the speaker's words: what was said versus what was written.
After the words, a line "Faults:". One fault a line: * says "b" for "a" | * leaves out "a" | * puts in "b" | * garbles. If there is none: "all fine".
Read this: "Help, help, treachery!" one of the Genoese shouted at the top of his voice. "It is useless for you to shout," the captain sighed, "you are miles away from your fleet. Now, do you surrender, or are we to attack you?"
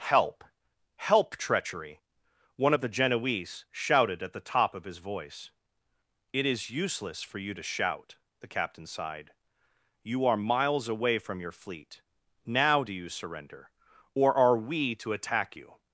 "Help, help, treachery!" one of the Genoese shouted at the top of his voice. "It is useless for you to shout," the captain sighed, "you are miles away from your fleet. Now, do you surrender, or are we to attack you?"
Faults:
all fine